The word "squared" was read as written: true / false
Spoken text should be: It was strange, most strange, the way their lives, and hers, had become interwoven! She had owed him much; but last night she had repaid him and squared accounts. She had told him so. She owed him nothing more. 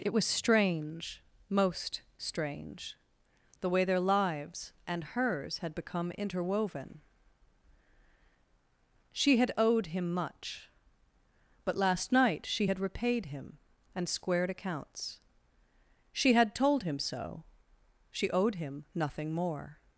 true